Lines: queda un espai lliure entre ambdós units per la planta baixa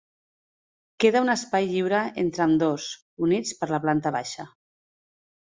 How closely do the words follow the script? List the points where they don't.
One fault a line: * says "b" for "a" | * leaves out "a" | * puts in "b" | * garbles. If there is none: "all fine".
all fine